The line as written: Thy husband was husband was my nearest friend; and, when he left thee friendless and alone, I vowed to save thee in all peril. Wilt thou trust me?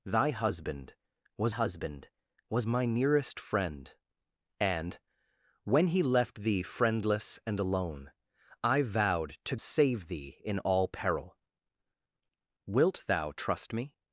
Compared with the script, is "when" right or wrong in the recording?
right